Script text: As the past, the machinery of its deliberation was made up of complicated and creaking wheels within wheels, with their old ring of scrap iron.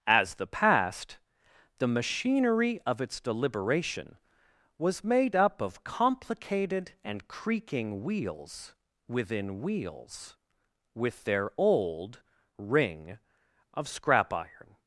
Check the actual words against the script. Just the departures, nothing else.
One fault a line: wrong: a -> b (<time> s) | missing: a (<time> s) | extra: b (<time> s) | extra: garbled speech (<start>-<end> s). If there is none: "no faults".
no faults